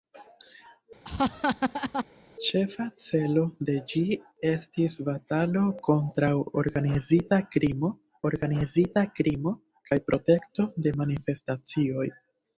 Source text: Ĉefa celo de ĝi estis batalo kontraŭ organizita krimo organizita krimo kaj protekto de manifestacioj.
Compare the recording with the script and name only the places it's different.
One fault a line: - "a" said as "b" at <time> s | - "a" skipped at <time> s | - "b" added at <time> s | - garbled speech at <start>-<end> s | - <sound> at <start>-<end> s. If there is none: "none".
- laugh at 1.0-2.0 s